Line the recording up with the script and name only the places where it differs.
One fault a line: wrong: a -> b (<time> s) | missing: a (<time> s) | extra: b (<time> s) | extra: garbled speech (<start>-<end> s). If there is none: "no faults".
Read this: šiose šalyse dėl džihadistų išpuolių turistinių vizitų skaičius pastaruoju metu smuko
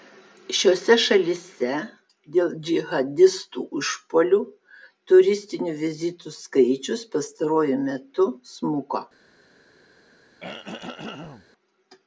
no faults